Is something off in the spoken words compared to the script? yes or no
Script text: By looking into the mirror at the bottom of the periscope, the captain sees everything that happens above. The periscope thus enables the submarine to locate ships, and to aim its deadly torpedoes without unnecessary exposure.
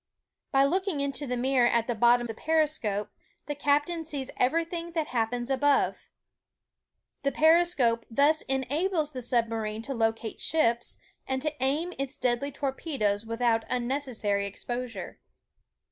yes